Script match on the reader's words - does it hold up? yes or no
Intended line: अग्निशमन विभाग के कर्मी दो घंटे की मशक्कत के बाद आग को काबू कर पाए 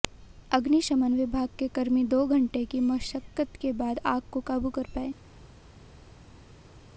yes